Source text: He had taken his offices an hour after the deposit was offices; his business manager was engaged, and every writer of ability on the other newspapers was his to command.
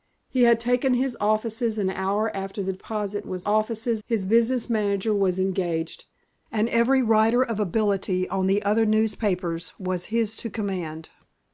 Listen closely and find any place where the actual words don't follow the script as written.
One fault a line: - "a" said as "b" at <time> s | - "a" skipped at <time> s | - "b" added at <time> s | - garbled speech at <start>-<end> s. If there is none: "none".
none